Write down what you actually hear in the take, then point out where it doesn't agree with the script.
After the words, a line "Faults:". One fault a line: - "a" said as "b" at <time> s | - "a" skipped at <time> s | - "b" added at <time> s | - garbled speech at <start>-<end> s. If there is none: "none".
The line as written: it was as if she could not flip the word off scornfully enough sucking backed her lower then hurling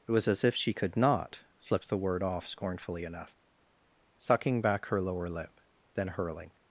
it was as if she could not flip the word off scornfully enough sucking back her lower lip then hurling
Faults:
- "backed" said as "back" at 4.6 s
- "lip" added at 5.3 s